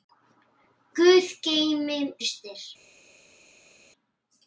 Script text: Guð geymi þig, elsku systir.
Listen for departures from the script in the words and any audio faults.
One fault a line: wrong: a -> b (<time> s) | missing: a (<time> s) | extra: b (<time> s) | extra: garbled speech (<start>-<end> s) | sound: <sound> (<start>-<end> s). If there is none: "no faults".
missing: þig elsku (2.0 s)